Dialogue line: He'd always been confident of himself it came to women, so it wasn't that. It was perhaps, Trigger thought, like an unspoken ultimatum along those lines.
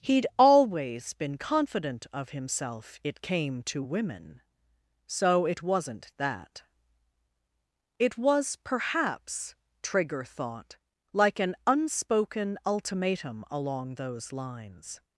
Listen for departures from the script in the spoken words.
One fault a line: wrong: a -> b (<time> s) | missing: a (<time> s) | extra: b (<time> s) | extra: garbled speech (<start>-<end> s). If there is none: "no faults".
no faults